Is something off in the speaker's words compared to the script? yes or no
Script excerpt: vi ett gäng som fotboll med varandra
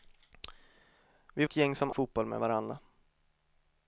no